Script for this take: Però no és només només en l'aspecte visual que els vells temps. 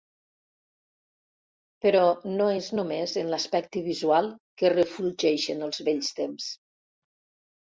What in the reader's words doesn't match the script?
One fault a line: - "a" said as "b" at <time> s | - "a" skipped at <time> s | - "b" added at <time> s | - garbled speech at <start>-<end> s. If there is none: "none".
- "només" skipped at 3.2 s
- "refulgeixen" added at 4.8 s